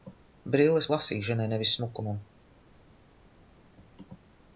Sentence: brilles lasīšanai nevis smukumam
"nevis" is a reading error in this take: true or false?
false